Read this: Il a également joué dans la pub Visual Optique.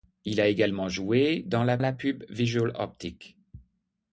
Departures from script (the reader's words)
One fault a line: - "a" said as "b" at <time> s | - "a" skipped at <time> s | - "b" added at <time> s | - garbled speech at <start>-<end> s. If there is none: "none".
- "la" added at 1.8 s